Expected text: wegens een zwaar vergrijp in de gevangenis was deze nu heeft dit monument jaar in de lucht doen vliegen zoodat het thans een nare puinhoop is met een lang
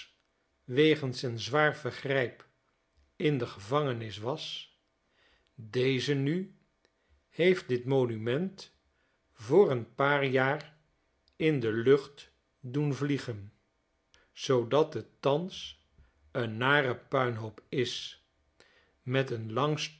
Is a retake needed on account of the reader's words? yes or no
yes